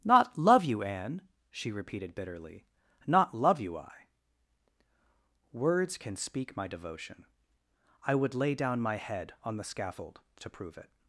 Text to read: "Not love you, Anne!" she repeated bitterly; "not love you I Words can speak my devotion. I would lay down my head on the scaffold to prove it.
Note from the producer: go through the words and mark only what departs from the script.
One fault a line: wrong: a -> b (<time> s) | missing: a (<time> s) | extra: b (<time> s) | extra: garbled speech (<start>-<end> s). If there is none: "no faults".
no faults